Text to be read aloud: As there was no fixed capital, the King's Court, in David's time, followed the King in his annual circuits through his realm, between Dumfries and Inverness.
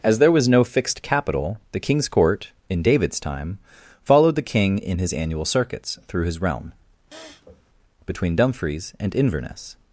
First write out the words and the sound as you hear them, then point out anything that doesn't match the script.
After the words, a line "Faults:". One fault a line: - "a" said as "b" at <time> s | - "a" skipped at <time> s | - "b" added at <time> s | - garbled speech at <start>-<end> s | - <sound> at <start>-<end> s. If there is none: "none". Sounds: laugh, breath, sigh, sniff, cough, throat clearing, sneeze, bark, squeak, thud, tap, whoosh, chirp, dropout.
As there was no fixed capital, the King's Court, in David's time, followed the King in his annual circuits through his realm, between Dumfries and Inverness.
Faults:
- sniff at 7.1-7.6 s